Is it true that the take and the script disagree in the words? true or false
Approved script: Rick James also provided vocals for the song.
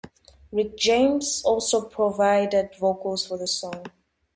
false